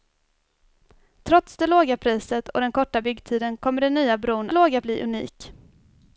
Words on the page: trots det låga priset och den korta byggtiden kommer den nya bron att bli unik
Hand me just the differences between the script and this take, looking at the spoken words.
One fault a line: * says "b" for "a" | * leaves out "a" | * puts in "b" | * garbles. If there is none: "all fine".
* says "låga" for "att"